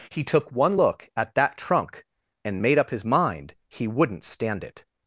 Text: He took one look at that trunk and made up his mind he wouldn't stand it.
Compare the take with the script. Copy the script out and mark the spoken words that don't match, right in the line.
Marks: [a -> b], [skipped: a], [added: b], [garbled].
He took one look at that trunk and made up his mind he wouldn't stand it.